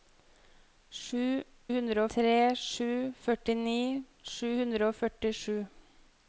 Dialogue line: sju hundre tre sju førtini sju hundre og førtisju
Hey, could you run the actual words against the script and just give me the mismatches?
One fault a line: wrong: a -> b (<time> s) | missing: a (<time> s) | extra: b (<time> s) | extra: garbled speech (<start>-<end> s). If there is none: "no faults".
no faults